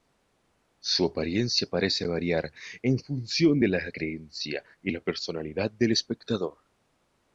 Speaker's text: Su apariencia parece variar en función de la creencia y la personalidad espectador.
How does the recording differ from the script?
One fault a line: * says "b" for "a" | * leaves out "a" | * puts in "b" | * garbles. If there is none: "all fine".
* puts in "del"